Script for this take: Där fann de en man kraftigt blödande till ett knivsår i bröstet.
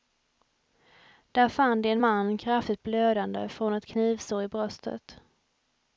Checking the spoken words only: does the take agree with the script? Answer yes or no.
no